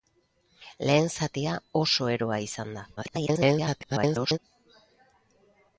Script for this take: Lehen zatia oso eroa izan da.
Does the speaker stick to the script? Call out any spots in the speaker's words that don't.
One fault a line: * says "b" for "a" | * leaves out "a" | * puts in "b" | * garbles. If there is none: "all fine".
* garbles